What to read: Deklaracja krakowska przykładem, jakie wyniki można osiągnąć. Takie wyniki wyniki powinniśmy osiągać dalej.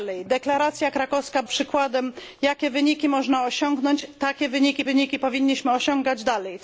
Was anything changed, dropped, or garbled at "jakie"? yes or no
no